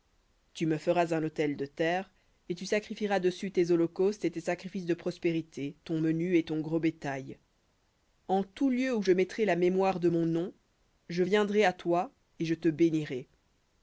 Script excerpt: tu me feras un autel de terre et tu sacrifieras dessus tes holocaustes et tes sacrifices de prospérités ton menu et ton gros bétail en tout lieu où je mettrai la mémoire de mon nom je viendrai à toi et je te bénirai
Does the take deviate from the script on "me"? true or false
false